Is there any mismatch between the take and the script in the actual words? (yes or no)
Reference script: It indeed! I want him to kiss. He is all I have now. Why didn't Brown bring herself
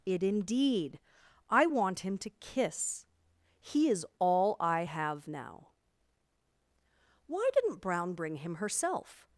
yes